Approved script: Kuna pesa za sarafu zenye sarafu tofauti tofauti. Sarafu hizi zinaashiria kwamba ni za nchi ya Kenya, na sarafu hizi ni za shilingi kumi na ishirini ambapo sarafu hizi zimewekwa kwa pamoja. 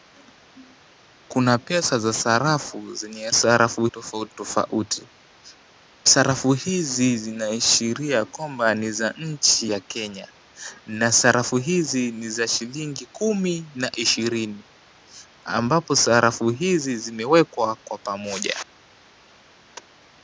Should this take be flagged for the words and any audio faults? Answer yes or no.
no